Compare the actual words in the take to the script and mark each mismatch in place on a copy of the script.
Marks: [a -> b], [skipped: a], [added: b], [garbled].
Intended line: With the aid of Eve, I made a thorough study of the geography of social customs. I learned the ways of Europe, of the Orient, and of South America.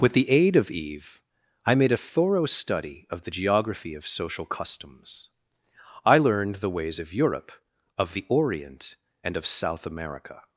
With the aid of Eve, I made a thorough study of the geography of social customs. I learned the ways of Europe, of the Orient, and of South America.